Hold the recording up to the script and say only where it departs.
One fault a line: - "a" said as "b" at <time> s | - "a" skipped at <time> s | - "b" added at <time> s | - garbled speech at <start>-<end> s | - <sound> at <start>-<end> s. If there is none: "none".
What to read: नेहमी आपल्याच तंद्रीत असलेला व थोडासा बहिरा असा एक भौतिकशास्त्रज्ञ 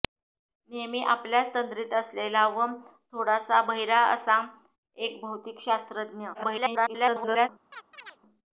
- garbled speech at 6.3-7.5 s
- chirp at 7.7-8.2 s